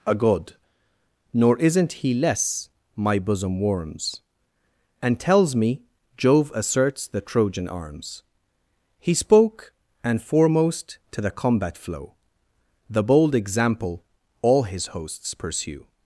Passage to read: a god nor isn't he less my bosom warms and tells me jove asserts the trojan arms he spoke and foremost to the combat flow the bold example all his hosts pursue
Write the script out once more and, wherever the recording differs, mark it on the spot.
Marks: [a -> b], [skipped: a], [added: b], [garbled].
a god nor isn't he less my bosom warms and tells me jove asserts the trojan arms he spoke and foremost to the combat flow the bold example all his hosts pursue